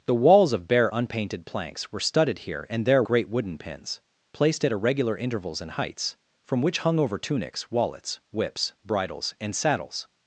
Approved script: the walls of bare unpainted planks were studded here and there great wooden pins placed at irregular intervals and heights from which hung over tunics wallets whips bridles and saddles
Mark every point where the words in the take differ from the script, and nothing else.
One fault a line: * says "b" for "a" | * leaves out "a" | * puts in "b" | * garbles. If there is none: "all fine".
all fine